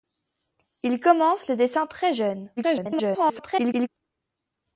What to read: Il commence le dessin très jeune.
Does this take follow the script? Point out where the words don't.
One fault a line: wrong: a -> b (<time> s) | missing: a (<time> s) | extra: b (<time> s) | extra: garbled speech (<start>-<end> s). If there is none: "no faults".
extra: garbled speech (2.6-3.9 s)